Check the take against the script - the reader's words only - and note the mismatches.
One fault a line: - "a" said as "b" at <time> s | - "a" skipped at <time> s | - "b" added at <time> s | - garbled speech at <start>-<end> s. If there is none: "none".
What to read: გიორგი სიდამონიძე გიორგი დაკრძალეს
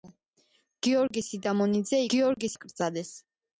none